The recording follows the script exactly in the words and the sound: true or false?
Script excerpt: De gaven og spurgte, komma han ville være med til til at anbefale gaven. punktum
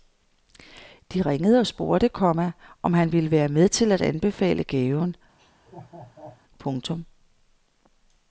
false